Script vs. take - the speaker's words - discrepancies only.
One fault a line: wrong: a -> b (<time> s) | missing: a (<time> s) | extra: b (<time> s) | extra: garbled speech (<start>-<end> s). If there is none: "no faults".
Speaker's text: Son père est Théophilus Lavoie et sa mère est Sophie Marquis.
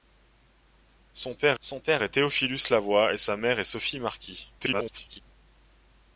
extra: son père (1.6 s)
extra: garbled speech (4.6-5.2 s)